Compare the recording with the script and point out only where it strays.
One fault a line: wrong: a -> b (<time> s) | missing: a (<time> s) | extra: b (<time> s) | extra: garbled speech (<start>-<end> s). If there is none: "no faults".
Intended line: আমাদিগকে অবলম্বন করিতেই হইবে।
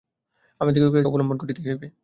no faults